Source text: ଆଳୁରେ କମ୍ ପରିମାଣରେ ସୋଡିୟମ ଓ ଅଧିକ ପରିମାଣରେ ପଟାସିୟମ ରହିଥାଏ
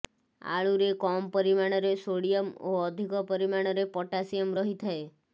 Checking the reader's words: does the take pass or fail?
pass